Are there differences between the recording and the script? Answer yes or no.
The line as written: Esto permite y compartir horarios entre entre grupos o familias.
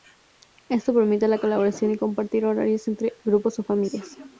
yes